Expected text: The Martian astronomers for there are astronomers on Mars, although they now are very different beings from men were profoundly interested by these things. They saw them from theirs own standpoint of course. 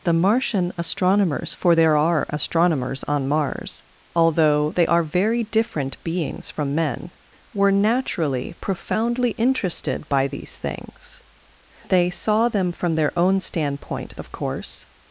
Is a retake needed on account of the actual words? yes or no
yes